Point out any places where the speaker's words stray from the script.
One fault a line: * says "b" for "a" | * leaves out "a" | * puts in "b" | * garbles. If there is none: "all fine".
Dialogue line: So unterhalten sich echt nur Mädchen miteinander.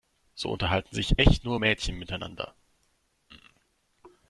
all fine